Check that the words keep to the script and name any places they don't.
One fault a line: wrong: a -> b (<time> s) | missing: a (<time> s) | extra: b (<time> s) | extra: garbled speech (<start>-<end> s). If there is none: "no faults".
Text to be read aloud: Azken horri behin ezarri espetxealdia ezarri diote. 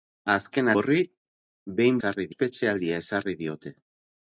no faults